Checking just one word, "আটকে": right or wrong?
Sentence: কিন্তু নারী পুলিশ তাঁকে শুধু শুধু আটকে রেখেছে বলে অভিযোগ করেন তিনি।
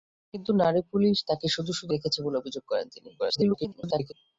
wrong